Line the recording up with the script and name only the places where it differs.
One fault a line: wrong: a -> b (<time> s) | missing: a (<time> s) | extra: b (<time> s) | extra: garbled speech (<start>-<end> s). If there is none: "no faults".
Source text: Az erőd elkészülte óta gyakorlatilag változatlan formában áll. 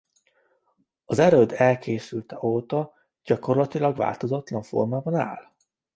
no faults